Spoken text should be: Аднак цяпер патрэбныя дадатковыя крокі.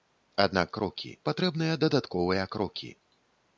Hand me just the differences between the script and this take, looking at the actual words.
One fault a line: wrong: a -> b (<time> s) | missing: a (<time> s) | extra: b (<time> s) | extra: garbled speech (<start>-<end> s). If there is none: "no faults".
wrong: цяпер -> крокі (0.8 s)